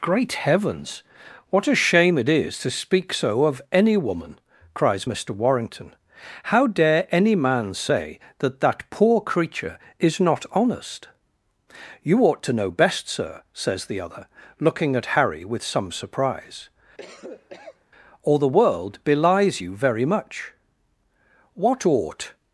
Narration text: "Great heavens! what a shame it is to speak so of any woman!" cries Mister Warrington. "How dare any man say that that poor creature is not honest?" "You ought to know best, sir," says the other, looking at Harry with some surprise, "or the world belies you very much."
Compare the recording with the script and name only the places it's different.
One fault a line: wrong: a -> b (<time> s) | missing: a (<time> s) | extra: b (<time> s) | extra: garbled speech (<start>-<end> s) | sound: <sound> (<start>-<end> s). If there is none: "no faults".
sound: cough (17.0-17.8 s)
extra: What ought (21.5 s)